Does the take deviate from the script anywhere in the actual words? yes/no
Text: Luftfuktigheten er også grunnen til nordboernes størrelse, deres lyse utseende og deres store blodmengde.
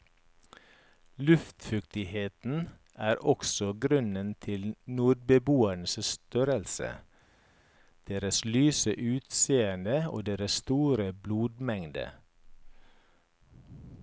no